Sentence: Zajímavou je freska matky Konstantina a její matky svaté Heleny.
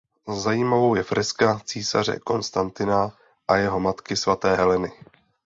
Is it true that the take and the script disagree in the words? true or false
true